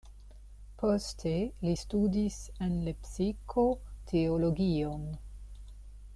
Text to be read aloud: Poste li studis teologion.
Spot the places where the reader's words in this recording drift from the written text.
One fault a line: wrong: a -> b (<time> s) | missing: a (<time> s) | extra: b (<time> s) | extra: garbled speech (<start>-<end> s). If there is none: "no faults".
extra: en Lepsiko (2.7 s)